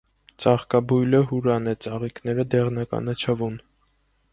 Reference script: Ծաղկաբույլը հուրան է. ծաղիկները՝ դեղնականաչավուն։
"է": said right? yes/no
yes